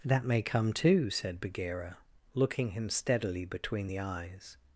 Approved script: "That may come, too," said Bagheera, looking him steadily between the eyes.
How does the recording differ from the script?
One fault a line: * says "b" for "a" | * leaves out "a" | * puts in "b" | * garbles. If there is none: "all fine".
all fine